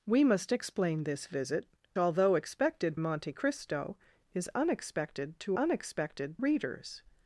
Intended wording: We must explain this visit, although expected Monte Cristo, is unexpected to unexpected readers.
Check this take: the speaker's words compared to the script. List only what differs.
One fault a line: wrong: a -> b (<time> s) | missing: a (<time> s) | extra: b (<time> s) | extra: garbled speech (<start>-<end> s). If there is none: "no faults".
no faults